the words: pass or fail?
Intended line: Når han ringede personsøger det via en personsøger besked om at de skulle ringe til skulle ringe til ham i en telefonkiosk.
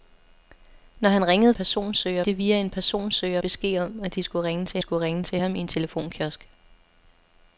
pass